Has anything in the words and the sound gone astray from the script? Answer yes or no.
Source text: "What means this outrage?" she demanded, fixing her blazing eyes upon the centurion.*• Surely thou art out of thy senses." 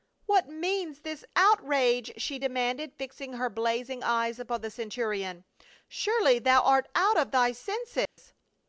yes